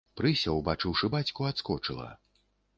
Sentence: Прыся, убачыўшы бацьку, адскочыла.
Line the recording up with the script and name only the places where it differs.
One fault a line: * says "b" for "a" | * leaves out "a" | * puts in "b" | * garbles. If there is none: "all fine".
all fine